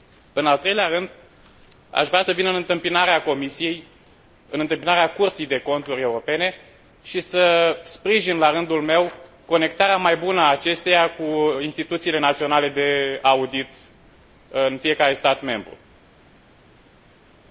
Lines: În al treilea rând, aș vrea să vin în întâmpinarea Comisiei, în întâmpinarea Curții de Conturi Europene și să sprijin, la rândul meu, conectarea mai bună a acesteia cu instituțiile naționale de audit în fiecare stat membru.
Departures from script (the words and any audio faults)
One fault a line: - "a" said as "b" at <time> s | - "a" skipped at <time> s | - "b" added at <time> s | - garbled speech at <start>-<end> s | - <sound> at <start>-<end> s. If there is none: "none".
none